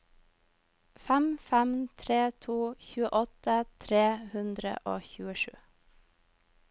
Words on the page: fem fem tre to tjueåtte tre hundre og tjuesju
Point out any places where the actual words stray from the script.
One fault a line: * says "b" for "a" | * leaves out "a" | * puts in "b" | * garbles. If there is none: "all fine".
all fine